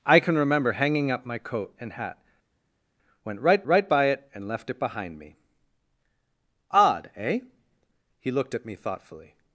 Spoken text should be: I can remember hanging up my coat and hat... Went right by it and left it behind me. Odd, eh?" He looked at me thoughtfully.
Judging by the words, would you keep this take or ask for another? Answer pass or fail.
fail